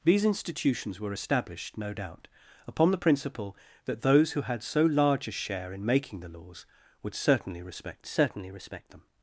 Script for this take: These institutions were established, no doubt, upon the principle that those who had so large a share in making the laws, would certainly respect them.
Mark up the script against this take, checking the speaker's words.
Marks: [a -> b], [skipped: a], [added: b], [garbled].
These institutions were established, no doubt, upon the principle that those who had so large a share in making the laws, would certainly respect [added: certainly respect] them.